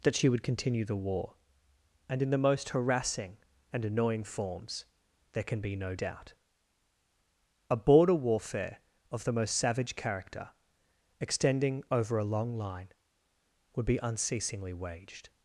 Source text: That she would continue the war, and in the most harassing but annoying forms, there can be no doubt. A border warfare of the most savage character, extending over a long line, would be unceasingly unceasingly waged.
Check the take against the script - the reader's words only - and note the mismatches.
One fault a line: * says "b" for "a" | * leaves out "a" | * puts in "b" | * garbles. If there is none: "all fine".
* says "and" for "but"
* leaves out "unceasingly"